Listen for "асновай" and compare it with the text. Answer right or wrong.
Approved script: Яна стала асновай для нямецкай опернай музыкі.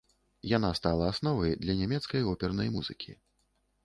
right